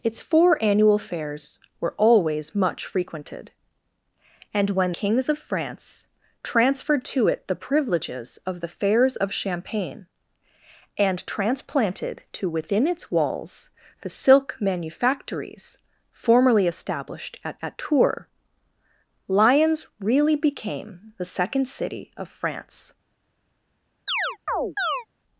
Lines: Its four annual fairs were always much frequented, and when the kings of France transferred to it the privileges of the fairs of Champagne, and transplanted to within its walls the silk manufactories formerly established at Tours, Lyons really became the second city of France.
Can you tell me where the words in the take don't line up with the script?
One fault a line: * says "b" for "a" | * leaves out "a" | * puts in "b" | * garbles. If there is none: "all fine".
* leaves out "the"
* puts in "at"